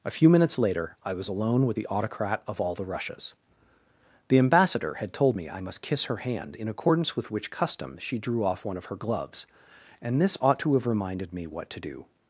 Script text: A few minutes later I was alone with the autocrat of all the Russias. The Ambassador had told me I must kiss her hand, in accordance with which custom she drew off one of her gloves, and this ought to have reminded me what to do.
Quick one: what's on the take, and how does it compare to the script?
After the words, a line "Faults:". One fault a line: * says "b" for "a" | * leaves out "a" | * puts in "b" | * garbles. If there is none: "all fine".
A few minutes later I was alone with the autocrat of all the Russias. The Ambassador had told me I must kiss her hand, in accordance with which custom she drew off one of her gloves, and this ought to have reminded me what to do.
Faults:
all fine